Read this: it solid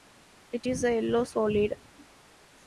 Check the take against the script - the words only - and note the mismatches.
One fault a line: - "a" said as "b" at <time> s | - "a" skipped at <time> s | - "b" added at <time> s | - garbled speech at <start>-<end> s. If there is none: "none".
- "is a yellow" added at 0.6 s